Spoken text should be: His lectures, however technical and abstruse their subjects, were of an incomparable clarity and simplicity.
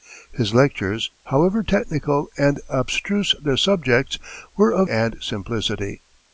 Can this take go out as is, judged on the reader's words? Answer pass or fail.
fail